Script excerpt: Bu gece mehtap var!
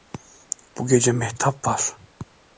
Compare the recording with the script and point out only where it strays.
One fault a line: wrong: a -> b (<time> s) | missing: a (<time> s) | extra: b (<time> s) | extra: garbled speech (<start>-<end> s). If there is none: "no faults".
no faults